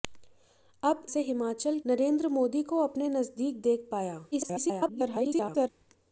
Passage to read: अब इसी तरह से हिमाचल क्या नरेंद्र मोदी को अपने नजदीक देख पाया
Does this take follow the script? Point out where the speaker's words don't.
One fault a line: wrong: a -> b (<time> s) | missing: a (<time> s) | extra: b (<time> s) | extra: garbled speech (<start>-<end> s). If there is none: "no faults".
missing: इसी तरह (1.1 s)
missing: क्या (1.8 s)
extra: garbled speech (4.3-5.7 s)